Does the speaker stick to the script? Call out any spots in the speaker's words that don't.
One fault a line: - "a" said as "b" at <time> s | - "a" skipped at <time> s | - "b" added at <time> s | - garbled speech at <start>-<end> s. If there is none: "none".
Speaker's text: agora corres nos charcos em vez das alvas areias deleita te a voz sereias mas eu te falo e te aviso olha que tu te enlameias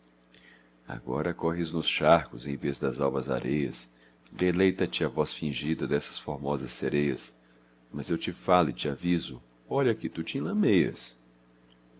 - "fingida dessas formosas" added at 5.3 s